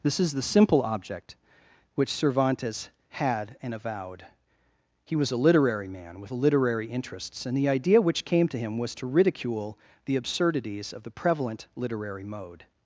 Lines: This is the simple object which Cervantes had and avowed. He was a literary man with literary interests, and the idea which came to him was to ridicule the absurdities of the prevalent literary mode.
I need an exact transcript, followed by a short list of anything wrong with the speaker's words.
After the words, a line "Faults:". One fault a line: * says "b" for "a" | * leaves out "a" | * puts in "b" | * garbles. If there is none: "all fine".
This is the simple object which Cervantes had and avowed. He was a literary man with literary interests, and the idea which came to him was to ridicule the absurdities of the prevalent literary mode.
Faults:
all fine